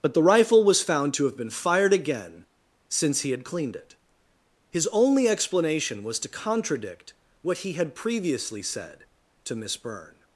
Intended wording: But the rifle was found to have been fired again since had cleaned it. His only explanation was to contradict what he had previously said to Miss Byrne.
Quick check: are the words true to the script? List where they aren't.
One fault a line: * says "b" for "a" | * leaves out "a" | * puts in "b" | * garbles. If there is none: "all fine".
* puts in "he"